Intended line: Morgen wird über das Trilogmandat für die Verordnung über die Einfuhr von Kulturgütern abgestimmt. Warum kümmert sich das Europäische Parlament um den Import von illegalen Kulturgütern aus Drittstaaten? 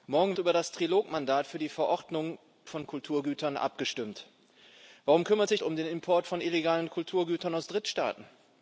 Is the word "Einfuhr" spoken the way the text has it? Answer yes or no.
no